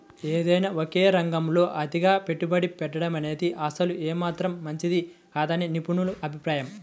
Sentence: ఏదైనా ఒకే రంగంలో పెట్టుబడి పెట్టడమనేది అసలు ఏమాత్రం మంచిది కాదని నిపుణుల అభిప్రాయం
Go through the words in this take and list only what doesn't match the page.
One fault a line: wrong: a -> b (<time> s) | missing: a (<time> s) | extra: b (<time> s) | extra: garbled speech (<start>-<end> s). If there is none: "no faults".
extra: అతిగా (1.8 s)